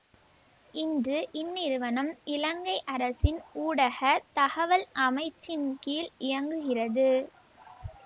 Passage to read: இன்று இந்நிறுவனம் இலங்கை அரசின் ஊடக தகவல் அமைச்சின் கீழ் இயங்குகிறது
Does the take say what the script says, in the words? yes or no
yes